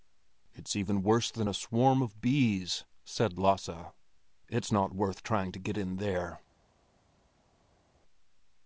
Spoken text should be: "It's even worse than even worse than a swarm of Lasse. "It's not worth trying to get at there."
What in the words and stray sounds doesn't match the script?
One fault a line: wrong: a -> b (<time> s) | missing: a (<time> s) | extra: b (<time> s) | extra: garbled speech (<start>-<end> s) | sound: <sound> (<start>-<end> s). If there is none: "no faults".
missing: even worse than (1.5 s)
extra: bees said (2.2 s)
wrong: at -> in (5.8 s)